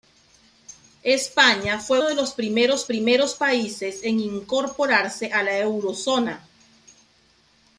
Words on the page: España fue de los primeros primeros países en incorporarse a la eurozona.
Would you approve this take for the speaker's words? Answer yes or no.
yes